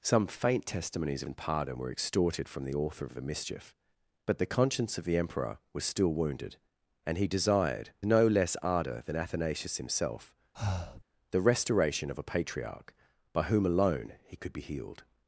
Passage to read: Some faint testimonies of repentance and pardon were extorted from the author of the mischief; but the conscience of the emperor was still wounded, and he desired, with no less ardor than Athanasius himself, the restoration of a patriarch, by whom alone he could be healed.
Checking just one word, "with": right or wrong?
wrong